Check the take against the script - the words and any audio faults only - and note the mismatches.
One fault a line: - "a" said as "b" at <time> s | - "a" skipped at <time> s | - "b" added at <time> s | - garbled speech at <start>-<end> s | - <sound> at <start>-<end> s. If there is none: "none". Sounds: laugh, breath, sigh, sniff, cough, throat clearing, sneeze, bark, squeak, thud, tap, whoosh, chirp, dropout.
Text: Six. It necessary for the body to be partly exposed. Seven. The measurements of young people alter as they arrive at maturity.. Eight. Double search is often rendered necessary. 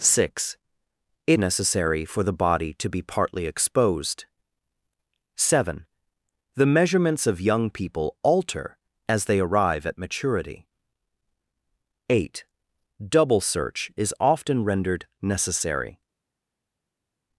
none